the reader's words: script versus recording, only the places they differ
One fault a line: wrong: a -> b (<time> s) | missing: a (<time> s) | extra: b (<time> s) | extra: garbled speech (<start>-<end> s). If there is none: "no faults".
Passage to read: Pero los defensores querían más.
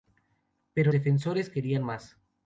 missing: los (0.9 s)